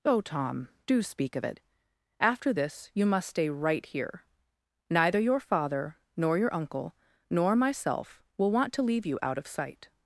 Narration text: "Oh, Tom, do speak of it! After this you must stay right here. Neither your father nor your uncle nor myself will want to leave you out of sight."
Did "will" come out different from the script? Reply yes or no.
no